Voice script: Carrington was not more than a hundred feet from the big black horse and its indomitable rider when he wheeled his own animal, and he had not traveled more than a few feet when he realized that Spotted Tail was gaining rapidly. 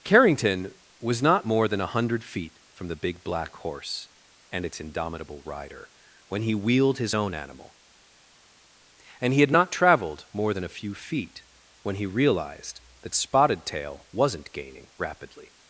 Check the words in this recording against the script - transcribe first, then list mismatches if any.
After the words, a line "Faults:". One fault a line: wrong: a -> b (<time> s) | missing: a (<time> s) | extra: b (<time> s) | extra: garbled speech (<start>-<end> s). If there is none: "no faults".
Carrington was not more than a hundred feet from the big black horse and its indomitable rider when he wheeled his own animal, and he had not traveled more than a few feet when he realized that Spotted Tail wasn't gaining rapidly.
Faults:
wrong: was -> wasn't (14.1 s)